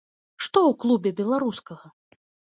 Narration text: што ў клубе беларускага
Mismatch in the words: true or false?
false